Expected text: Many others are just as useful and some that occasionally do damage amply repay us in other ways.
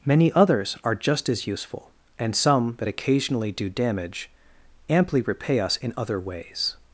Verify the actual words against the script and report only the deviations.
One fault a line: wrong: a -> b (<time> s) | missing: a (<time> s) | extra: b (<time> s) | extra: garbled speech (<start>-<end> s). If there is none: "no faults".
no faults